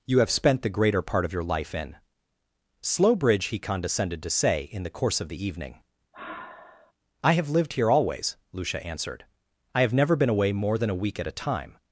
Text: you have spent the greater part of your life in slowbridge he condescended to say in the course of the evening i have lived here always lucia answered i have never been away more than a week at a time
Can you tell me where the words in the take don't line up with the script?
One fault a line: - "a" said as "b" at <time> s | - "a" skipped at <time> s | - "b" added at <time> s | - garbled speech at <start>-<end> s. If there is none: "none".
none